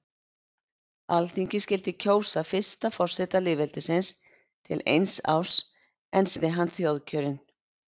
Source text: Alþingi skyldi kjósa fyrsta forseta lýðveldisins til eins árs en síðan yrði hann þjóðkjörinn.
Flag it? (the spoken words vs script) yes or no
yes